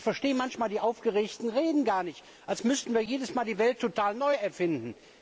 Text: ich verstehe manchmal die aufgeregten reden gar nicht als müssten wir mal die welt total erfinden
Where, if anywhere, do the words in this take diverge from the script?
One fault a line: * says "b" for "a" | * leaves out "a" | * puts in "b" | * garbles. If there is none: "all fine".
* puts in "jedes"
* puts in "neu"